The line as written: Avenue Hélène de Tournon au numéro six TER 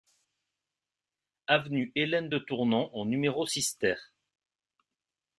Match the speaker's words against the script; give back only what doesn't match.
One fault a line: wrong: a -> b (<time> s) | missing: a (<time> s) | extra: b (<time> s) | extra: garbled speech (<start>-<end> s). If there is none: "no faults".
no faults